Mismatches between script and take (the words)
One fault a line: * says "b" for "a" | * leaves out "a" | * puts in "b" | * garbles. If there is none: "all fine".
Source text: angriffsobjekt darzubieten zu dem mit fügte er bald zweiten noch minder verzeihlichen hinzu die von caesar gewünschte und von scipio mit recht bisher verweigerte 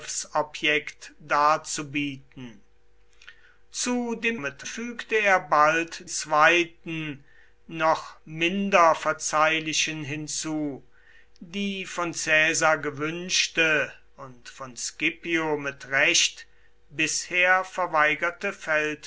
all fine